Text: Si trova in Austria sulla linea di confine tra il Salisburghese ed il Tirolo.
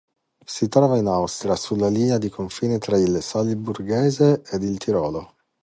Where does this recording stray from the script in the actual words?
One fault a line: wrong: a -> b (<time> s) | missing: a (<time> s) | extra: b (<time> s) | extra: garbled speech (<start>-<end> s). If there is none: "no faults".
no faults